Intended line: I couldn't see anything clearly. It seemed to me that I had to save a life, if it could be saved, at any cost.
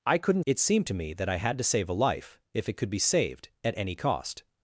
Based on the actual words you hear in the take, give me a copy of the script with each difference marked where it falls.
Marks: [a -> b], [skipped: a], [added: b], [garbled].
I couldn't [skipped: see anything clearly.] It seemed to me that I had to save a life, if it could be saved, at any cost.